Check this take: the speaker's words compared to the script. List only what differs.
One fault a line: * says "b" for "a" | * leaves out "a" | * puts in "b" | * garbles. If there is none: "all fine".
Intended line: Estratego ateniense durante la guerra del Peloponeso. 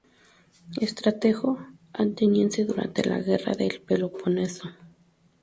all fine